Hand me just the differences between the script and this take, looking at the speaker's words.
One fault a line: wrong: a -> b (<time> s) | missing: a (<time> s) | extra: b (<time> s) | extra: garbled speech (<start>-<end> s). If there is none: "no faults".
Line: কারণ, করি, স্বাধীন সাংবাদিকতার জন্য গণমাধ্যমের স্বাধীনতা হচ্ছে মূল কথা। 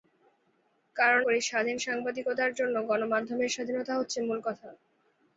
no faults